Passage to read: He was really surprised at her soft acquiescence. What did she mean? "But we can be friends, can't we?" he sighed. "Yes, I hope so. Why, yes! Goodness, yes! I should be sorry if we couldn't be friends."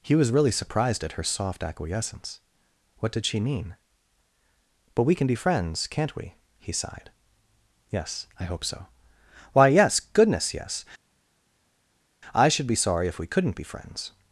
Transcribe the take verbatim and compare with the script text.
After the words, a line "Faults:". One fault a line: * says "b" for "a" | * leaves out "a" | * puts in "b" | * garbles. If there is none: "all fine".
He was really surprised at her soft acquiescence. What did she mean? "But we can be friends, can't we?" he sighed. "Yes, I hope so. Why, yes! Goodness, yes! I should be sorry if we couldn't be friends."
Faults:
all fine